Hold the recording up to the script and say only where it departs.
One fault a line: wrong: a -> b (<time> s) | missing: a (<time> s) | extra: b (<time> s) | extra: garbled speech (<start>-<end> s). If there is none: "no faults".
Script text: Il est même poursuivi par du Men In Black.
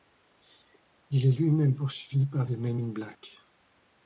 extra: lui (1.4 s)
wrong: du -> des (2.4 s)